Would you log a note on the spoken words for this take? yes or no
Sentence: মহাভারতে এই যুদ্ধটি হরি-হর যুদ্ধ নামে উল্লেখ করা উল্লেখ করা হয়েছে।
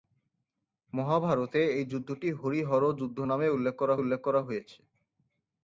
no